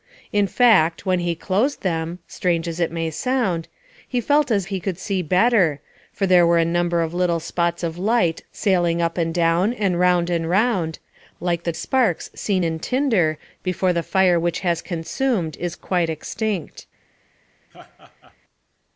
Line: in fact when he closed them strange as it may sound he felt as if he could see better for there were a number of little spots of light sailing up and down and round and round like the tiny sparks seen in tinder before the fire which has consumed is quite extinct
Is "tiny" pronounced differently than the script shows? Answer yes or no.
yes